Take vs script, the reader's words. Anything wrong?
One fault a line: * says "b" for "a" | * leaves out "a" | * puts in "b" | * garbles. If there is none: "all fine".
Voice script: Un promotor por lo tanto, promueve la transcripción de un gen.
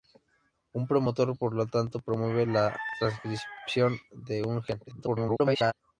* garbles